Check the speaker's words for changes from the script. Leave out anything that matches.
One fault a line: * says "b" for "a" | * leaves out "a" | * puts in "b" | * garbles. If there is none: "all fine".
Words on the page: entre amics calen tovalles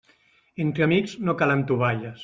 * puts in "no"